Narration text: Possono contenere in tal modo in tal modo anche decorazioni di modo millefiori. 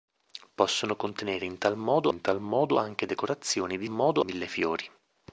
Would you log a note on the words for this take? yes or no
no